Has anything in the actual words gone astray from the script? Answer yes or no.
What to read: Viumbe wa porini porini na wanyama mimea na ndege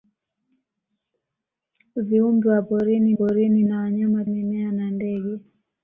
no